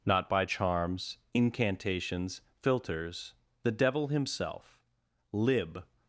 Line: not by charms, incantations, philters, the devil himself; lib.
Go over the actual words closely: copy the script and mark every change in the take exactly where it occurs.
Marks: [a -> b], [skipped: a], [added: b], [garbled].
not by charms, incantations, philters, the devil himself; lib.